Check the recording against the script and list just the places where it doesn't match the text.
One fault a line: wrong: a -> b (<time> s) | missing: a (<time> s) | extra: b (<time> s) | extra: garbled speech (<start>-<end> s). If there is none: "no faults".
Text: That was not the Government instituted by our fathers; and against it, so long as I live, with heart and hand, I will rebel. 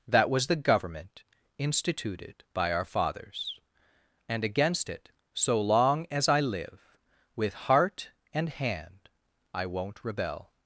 missing: not (0.5 s)
wrong: will -> won't (9.7 s)